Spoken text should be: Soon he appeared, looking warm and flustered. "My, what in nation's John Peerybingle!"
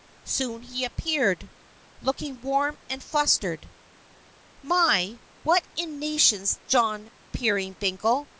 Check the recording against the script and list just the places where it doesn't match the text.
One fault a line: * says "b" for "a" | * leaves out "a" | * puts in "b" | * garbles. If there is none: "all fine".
all fine